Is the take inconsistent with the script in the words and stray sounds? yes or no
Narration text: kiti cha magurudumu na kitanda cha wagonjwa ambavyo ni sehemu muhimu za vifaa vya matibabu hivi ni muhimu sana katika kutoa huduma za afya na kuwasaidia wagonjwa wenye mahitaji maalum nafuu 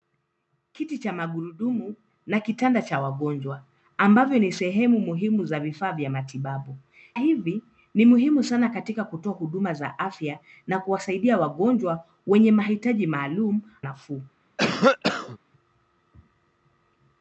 yes